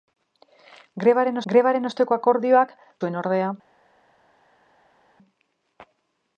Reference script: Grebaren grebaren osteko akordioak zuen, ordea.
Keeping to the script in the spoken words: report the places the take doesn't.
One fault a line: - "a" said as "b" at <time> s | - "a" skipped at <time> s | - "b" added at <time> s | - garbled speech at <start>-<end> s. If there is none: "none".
none